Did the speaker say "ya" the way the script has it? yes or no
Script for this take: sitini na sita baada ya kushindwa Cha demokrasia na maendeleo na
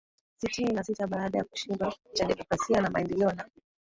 yes